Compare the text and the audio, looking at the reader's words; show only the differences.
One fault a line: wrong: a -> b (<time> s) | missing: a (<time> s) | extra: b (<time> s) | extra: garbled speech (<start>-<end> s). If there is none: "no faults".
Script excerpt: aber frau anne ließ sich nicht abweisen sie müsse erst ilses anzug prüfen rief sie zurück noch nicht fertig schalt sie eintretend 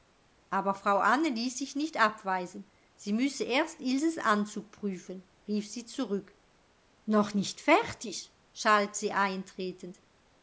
no faults